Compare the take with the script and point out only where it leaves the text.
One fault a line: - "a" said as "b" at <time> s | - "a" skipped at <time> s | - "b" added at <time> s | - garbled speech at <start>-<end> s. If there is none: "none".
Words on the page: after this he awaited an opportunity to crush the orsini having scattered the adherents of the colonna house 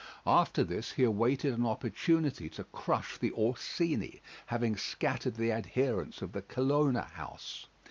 none